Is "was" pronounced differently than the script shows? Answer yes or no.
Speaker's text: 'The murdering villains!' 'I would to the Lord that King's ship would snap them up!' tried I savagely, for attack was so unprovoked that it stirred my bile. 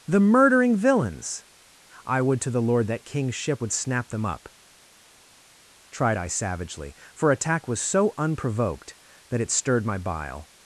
no